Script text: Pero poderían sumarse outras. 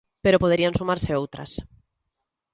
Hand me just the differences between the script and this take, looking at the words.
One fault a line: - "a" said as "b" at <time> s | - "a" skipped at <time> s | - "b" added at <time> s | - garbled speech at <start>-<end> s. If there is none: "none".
none